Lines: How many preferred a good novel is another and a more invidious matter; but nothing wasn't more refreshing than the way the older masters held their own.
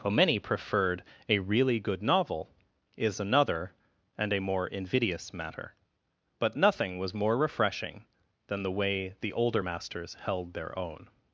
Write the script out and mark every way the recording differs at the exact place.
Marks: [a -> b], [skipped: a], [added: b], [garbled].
How many preferred a [added: really] good novel is another and a more invidious matter; but nothing [wasn't -> was] more refreshing than the way the older masters held their own.